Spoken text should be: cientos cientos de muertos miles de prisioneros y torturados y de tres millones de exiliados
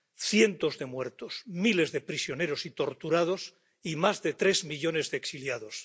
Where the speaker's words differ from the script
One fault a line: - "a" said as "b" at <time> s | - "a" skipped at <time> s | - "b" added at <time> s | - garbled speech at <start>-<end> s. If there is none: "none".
- "cientos" skipped at 0.8 s
- "más" added at 4.0 s